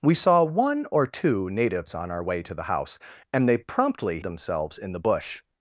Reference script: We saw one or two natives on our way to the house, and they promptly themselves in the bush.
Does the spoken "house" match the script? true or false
true